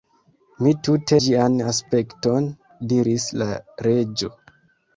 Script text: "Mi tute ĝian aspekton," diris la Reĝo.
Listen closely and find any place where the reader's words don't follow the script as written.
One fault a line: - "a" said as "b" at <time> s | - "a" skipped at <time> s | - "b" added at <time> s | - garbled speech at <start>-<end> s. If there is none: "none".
none